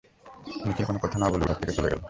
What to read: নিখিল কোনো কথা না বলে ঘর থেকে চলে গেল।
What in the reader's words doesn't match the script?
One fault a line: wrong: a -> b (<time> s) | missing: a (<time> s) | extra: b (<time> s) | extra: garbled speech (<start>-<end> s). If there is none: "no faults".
no faults